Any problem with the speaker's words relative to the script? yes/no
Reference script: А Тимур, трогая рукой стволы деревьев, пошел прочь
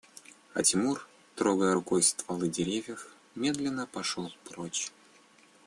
yes